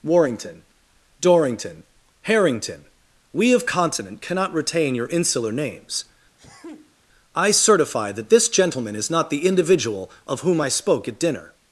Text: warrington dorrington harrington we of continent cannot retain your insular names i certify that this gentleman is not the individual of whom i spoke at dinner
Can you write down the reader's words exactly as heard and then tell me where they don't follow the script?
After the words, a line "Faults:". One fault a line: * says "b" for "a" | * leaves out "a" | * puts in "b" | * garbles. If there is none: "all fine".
warrington dorrington harrington we of continent cannot retain your insular names i certify that this gentleman is not the individual of whom i spoke at dinner
Faults:
all fine